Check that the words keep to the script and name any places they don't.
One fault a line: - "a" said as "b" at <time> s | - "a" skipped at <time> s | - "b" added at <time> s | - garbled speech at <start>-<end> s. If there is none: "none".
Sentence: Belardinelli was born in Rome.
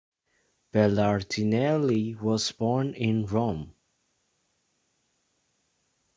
none